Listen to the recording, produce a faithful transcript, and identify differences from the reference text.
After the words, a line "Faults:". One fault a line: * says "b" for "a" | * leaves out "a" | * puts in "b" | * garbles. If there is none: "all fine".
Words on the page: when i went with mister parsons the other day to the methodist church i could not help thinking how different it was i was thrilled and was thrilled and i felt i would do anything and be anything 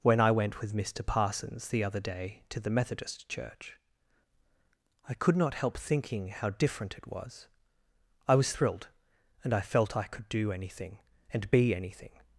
when i went with mister parsons the other day to the methodist church i could not help thinking how different it was i was thrilled and i felt i could do anything and be anything
Faults:
* leaves out "was thrilled and"
* says "could" for "would"